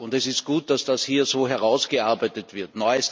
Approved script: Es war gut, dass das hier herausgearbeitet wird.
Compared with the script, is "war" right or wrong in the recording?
wrong